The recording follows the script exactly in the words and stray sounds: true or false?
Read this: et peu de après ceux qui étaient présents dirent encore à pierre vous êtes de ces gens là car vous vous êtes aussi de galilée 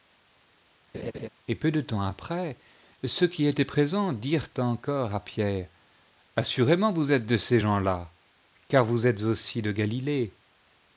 false